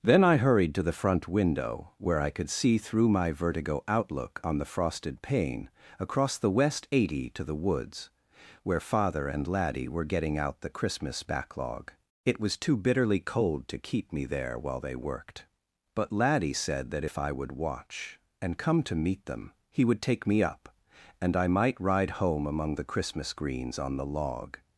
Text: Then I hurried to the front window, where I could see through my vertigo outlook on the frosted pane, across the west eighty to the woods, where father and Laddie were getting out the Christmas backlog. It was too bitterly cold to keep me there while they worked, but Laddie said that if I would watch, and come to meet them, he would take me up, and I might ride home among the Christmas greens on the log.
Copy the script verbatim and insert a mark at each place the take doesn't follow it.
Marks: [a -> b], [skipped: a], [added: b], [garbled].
Then I hurried to the front window, where I could see through my vertigo outlook on the frosted pane, across the west eighty to the woods, where father and Laddie were getting out the Christmas backlog. It was too bitterly cold to keep me there while they worked, but Laddie said that if I would watch, and come to meet them, he would take me up, and I might ride home among the Christmas greens on the log.